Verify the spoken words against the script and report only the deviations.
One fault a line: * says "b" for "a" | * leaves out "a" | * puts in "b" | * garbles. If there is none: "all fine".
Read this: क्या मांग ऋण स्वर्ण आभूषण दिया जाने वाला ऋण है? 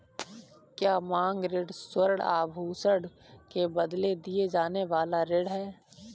* puts in "के बदले"